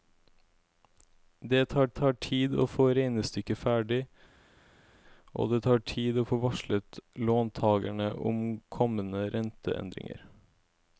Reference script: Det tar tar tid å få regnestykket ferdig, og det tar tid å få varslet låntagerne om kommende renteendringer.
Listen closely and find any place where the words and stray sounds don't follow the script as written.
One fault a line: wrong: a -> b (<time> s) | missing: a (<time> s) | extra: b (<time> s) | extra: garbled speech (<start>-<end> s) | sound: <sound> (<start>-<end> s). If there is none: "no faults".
no faults